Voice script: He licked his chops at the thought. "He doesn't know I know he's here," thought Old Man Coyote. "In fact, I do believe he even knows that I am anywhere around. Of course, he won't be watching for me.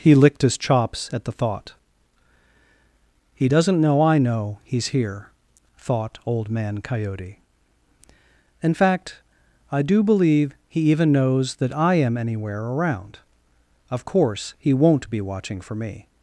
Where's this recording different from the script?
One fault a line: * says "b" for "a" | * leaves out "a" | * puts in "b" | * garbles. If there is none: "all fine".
all fine